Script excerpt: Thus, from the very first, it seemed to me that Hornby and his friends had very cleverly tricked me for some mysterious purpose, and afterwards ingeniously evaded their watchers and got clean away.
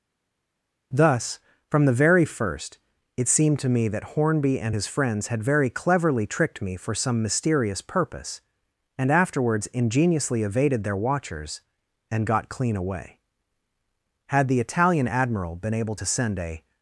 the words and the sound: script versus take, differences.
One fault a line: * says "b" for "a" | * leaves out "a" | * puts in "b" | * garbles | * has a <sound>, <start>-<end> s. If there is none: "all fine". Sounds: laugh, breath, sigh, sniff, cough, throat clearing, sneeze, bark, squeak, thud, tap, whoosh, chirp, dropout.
* puts in "Had the Italian Admiral been able to send a"